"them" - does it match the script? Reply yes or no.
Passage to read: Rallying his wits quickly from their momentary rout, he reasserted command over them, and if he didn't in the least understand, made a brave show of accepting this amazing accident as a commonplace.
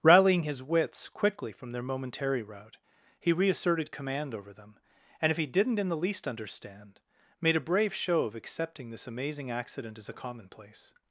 yes